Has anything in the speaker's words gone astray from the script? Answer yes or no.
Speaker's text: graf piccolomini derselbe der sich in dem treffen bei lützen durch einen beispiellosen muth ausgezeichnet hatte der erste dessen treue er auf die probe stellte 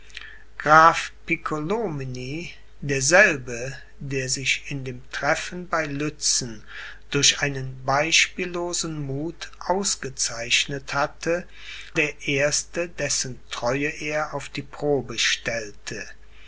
no